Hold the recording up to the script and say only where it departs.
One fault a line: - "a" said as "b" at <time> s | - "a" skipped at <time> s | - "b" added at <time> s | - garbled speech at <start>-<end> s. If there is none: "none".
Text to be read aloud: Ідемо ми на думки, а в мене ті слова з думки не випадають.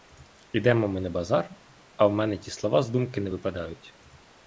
- "думки" said as "базар" at 1.1 s